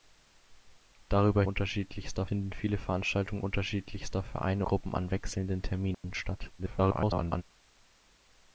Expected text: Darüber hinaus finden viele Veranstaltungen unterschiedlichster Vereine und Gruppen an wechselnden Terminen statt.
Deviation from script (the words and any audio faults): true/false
true